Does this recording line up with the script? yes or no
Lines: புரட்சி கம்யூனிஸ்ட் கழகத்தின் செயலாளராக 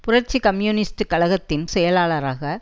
yes